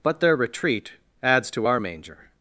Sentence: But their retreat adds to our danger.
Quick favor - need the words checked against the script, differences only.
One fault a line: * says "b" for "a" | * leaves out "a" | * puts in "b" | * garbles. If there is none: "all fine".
* says "manger" for "danger"